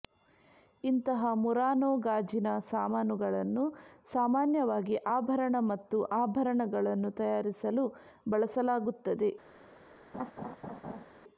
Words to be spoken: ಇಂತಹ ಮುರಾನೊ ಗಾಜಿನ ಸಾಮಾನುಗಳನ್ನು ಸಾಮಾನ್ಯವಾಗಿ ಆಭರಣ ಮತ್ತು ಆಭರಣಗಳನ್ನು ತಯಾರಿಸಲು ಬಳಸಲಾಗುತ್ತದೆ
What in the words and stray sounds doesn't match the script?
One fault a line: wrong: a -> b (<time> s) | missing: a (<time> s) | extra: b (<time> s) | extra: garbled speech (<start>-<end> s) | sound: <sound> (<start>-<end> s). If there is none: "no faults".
sound: laugh (10.1-11.0 s)